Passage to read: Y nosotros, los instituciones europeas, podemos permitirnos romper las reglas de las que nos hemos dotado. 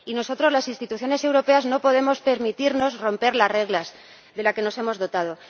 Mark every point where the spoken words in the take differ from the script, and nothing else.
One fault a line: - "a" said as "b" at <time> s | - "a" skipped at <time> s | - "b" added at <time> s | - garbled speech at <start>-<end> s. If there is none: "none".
- "los" said as "las" at 0.5 s
- "no" added at 1.6 s